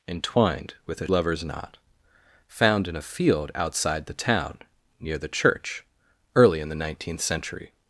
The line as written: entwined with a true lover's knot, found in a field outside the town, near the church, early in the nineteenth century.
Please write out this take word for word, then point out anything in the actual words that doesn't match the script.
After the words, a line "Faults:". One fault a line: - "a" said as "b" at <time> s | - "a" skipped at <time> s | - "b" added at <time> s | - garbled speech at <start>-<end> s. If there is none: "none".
entwined with a lover's knot, found in a field outside the town, near the church, early in the nineteenth century.
Faults:
- "true" skipped at 1.1 s